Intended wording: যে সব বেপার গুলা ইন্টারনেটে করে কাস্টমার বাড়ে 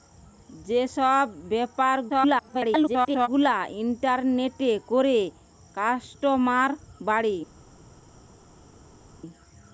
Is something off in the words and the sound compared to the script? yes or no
yes